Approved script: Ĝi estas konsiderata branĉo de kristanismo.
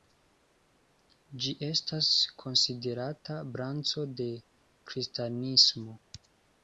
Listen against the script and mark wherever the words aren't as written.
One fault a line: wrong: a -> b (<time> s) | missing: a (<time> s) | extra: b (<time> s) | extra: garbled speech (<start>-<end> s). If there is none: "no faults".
no faults